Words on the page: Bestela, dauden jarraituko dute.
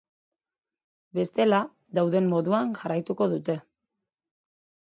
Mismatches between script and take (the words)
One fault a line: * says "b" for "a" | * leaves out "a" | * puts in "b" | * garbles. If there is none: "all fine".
* puts in "moduan"